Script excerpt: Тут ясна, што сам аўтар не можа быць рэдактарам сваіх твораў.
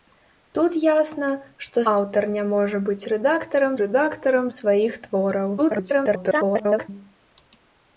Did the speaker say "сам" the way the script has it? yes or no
no